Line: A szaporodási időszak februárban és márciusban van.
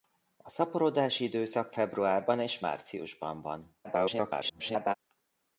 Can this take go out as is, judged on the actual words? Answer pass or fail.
fail